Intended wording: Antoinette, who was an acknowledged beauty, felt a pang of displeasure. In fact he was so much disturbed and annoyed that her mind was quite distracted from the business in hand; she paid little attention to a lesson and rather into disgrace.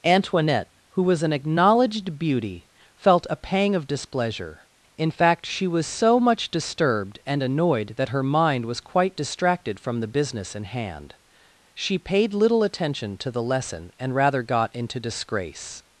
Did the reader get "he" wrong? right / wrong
wrong